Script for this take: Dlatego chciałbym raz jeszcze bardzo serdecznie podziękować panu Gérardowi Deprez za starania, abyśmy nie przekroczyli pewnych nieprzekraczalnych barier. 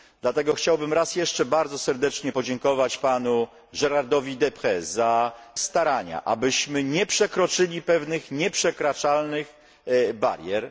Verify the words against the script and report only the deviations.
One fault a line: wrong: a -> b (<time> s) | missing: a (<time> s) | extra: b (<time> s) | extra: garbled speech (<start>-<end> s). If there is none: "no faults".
no faults